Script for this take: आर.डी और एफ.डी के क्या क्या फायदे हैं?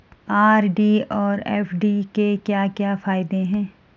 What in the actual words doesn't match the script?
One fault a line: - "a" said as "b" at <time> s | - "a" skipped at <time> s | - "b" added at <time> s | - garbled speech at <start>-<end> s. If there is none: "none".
none